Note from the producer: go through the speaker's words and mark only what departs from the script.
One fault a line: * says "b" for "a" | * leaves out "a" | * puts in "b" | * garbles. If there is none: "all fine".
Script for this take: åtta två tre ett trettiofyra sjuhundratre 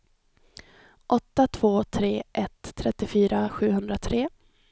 all fine